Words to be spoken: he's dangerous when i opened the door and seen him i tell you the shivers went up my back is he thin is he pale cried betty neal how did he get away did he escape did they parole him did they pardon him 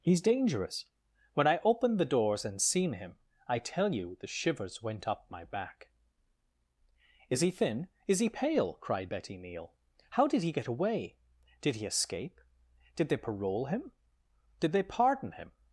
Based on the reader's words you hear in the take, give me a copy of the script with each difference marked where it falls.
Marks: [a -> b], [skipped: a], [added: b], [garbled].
he's dangerous when i opened the [door -> doors] and seen him i tell you the shivers went up my back is he thin is he pale cried betty neal how did he get away did he escape did they parole him did they pardon him